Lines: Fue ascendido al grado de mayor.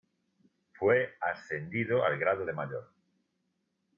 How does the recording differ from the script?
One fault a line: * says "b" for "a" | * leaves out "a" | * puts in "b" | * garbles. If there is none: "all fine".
all fine